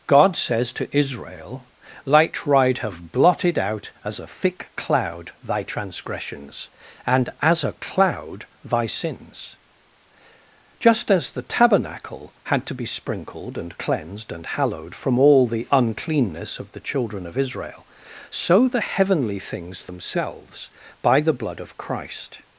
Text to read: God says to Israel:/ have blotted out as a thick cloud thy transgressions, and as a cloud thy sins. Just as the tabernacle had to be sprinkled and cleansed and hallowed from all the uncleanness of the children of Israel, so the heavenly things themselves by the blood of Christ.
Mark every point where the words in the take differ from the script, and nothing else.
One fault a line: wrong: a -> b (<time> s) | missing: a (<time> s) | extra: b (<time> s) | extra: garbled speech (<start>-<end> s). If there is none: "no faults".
extra: light ride (2.0 s)